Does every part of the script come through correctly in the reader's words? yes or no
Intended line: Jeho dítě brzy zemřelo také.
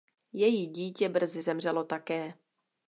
no